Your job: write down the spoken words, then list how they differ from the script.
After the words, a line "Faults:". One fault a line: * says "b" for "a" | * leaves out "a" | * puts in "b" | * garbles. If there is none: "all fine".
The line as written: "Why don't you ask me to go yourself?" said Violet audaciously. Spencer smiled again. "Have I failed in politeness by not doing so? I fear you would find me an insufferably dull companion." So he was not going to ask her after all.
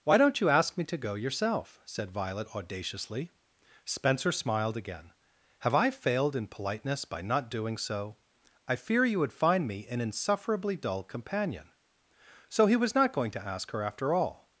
"Why don't you ask me to go yourself?" said Violet audaciously. Spencer smiled again. "Have I failed in politeness by not doing so? I fear you would find me an insufferably dull companion." So he was not going to ask her after all.
Faults:
all fine